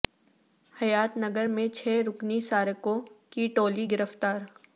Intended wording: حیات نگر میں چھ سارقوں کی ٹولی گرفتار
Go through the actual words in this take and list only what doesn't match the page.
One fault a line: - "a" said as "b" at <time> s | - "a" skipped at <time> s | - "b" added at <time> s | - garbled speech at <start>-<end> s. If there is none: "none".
- "رکنی" added at 2.1 s